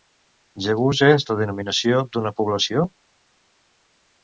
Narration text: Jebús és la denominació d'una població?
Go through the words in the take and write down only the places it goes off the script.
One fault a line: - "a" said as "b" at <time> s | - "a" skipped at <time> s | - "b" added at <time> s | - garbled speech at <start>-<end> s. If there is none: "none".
none